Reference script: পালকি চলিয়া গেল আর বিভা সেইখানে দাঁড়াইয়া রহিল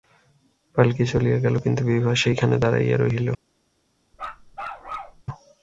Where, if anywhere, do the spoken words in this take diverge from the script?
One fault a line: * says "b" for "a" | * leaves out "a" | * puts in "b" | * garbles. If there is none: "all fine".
* says "কিন্তু" for "আর"